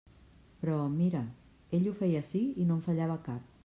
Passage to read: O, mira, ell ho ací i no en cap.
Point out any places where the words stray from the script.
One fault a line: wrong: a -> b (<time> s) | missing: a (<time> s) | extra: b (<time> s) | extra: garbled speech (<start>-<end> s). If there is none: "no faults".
wrong: O -> Però (0.6 s)
extra: feia (2.0 s)
extra: fallava (2.9 s)